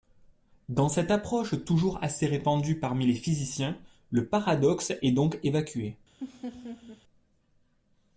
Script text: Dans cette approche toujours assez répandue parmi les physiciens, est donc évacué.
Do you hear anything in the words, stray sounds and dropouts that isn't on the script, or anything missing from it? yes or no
yes